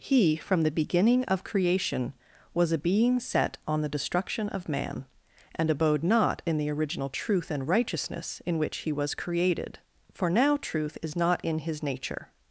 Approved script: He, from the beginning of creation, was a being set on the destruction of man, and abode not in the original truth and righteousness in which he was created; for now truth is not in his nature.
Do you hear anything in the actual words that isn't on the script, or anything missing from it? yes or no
no